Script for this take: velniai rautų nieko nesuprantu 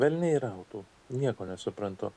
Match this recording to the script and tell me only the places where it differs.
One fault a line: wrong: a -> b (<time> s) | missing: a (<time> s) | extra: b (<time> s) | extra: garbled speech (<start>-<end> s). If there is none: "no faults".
no faults